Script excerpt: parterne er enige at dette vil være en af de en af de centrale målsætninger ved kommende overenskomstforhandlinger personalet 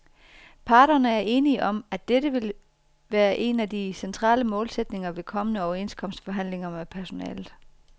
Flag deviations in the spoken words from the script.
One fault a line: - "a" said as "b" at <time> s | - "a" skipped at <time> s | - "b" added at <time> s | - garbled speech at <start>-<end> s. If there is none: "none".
- "om" added at 1.6 s
- "en af de" skipped at 3.9 s
- "med" added at 6.7 s